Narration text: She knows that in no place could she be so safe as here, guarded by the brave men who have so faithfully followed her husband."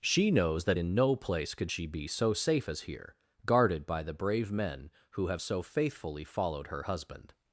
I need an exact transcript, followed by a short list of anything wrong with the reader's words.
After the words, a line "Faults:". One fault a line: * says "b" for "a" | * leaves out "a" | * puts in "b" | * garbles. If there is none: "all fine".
She knows that in no place could she be so safe as here, guarded by the brave men who have so faithfully followed her husband."
Faults:
all fine